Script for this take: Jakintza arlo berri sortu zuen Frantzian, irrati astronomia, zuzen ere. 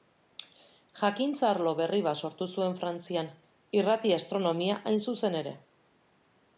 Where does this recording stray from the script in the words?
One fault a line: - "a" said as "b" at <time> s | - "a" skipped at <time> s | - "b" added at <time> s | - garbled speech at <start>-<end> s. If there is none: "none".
- "bat" added at 2.1 s
- "hain" added at 4.9 s